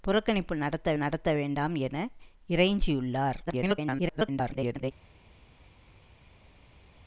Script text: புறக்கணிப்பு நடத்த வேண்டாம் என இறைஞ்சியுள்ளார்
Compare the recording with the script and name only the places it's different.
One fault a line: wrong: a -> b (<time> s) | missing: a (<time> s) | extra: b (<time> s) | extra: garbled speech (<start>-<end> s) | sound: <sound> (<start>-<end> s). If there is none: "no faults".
extra: நடத்த (0.9 s)
extra: garbled speech (3.5-4.9 s)